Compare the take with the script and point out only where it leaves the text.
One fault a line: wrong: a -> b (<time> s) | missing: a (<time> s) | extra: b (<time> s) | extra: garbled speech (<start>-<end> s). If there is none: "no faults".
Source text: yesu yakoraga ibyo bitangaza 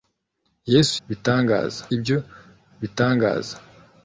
wrong: yakoraga -> bitangaza (1.1 s)